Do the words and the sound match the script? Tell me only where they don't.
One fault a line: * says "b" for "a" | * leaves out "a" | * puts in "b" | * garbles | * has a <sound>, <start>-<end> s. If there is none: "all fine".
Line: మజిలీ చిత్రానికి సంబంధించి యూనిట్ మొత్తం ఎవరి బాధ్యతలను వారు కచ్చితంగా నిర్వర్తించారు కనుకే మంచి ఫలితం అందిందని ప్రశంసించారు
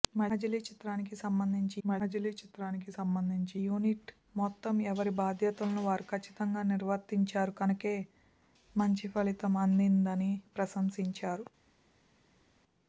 * puts in "మజిలీ చిత్రానికి సంబంధించి"